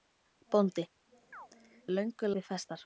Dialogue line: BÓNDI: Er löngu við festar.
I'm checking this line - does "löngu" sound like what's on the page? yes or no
yes